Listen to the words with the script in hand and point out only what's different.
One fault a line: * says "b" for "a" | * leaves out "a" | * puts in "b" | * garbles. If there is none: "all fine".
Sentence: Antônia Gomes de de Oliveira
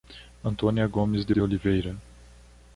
all fine